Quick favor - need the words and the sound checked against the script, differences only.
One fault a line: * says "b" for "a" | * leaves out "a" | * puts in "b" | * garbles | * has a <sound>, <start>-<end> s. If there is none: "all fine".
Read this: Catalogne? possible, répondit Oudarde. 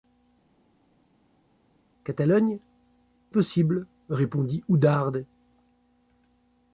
all fine